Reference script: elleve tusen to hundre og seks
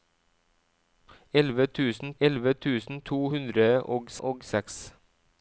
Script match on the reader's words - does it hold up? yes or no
no